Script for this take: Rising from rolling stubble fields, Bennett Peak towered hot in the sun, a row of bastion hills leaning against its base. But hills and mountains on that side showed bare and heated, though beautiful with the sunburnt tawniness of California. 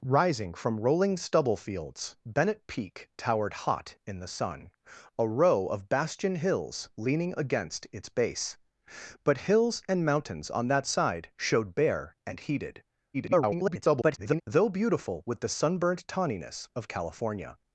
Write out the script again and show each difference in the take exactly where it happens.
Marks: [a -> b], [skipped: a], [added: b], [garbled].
Rising from rolling stubble fields, Bennett Peak towered hot in the sun, a row of bastion hills leaning against its base. But hills and mountains on that side showed bare and heated, [garbled] though beautiful with the sunburnt tawniness of California.